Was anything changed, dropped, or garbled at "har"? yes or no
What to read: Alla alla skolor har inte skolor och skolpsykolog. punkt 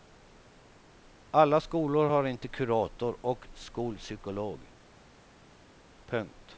no